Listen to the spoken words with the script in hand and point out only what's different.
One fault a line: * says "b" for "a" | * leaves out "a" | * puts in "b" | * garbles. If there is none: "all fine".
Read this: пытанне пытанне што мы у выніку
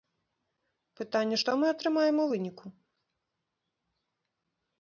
* leaves out "пытанне"
* puts in "атрымаем"